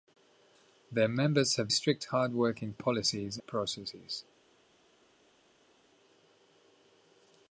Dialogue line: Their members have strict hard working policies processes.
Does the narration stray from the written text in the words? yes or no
no